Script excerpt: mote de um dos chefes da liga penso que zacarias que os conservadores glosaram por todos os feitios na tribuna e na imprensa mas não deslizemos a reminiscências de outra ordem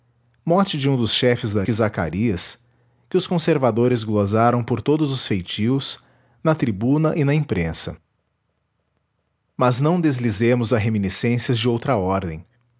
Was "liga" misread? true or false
true